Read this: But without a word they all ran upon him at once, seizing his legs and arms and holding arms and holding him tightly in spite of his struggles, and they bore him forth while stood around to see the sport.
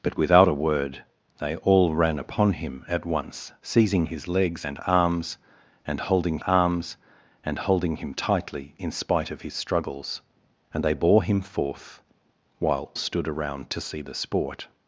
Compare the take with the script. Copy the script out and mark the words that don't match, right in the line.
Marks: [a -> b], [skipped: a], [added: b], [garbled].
But without a word they all ran upon him at once, seizing his legs and arms and holding arms and holding him tightly in spite of his struggles, and they bore him forth while stood around to see the sport.